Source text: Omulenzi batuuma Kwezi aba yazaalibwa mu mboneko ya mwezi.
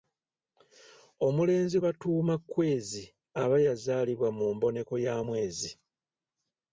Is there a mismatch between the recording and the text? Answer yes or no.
no